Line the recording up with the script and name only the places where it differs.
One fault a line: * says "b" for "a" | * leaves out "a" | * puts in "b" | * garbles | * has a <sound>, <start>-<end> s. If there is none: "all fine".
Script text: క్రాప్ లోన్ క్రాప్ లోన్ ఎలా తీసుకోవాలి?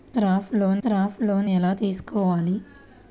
all fine